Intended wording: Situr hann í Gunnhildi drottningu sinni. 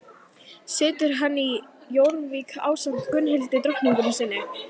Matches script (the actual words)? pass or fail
fail